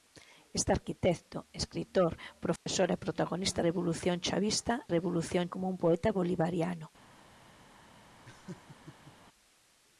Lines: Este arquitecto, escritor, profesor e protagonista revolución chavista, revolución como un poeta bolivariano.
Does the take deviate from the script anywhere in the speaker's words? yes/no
no